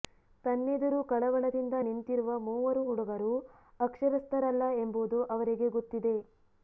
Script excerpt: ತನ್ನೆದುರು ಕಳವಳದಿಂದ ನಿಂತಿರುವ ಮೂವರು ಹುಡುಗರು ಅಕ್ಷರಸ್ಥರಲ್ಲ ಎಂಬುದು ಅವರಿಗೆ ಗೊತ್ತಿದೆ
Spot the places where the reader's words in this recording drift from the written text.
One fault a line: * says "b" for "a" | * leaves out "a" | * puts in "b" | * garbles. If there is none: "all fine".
all fine